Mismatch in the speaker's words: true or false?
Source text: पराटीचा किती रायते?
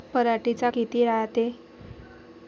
false